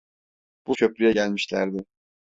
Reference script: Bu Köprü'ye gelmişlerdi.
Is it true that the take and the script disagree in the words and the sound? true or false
false